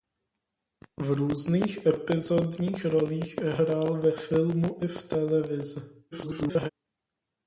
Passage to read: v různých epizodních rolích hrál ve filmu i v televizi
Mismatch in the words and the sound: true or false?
true